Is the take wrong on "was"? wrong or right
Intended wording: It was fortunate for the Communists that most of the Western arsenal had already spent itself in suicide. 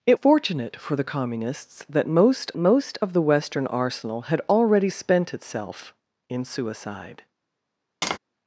wrong